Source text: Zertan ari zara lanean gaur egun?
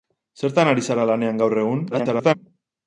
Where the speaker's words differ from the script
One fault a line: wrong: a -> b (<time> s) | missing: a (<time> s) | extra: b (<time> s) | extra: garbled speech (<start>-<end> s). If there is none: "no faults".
extra: garbled speech (1.9-2.3 s)